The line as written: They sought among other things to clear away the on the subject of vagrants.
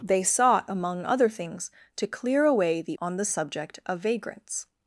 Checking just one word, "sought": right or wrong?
right